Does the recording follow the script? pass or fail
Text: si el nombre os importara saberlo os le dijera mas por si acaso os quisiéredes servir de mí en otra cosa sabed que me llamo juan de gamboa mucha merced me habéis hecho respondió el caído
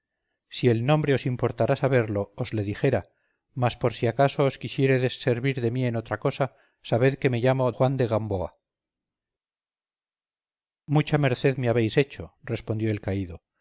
pass